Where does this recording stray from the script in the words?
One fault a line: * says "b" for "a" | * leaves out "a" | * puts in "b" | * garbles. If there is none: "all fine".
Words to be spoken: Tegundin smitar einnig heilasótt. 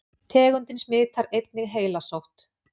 all fine